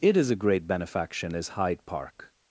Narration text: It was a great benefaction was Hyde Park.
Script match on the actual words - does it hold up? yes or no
no